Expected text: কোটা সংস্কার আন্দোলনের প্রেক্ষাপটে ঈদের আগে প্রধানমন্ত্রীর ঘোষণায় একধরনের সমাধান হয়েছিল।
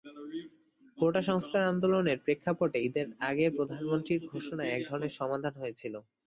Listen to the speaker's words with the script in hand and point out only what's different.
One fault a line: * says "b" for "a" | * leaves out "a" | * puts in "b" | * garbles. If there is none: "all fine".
all fine